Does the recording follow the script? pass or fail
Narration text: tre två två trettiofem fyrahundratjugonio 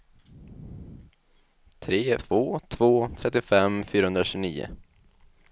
pass